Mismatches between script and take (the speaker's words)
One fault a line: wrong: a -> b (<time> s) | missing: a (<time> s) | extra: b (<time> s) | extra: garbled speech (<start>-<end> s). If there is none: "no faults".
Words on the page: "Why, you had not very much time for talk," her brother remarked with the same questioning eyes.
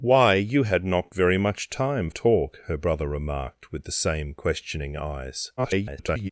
missing: for (2.1 s)
extra: garbled speech (5.6-6.3 s)